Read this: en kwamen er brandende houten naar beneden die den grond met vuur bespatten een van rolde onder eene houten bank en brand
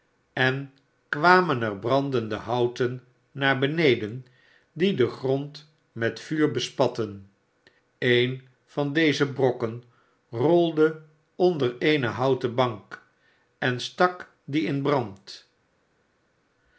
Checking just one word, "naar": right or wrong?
right